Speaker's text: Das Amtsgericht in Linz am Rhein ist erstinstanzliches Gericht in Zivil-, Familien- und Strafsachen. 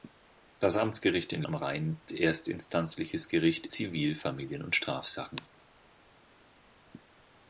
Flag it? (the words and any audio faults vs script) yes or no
yes